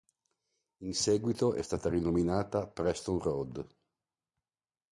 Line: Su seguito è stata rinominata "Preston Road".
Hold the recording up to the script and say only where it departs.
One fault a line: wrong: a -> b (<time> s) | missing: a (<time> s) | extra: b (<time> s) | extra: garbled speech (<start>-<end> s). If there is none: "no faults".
wrong: Su -> In (0.8 s)